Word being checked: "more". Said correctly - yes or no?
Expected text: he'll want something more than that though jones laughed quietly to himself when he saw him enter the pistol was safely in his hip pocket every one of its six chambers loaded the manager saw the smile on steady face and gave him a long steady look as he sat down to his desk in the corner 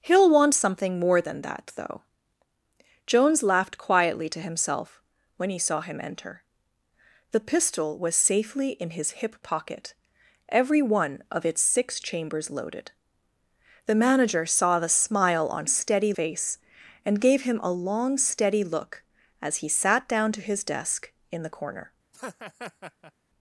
yes